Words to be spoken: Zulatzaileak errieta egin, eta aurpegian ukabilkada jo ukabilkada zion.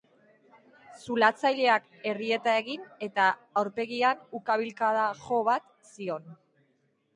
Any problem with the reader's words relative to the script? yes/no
yes